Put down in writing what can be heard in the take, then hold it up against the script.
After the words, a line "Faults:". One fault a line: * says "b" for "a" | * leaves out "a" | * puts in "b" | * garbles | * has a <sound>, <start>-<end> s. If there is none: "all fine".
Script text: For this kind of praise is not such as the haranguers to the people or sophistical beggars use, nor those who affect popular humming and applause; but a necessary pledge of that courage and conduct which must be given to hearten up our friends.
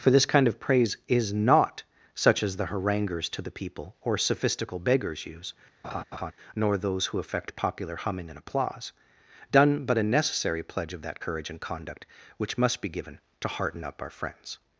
For this kind of praise is not such as the haranguers to the people or sophistical beggars use, nor those who affect popular humming and applause; done but a necessary pledge of that courage and conduct which must be given to hearten up our friends.
Faults:
* has a laugh, 5.8-6.3 s
* puts in "done"